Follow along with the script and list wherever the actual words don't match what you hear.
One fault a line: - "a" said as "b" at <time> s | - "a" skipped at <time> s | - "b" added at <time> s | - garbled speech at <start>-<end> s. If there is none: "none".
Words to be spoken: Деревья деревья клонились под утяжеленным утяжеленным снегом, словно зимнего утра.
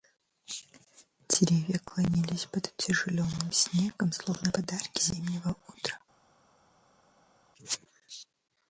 - "деревья" skipped at 1.8 s
- "утяжеленным" skipped at 3.5 s
- "подарки" added at 4.5 s